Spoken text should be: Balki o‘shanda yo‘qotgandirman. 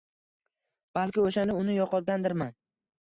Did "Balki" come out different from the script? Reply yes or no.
no